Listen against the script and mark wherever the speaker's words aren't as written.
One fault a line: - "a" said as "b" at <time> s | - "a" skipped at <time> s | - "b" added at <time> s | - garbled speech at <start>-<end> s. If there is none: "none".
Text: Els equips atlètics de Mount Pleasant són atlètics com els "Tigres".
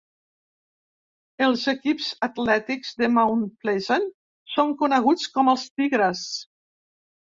- "atlètics" said as "coneguts" at 4.8 s